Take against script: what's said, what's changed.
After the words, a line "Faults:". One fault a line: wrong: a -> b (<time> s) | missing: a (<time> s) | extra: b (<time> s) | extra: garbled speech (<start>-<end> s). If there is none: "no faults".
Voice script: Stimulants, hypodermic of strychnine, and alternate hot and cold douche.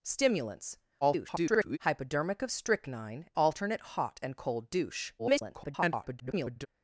Stimulants, [garbled] hypodermic of strychnine, alternate hot and cold douche. [garbled]
Faults:
extra: garbled speech (1.0-1.8 s)
missing: and (3.3 s)
extra: garbled speech (5.2-6.7 s)